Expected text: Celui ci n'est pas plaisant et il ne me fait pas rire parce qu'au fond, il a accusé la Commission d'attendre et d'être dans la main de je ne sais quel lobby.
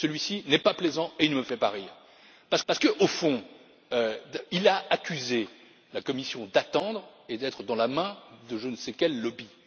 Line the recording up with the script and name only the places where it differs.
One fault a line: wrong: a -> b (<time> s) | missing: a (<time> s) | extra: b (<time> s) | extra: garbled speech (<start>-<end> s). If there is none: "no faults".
extra: parce (2.7 s)